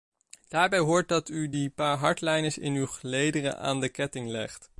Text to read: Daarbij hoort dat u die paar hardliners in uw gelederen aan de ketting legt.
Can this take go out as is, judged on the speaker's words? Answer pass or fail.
pass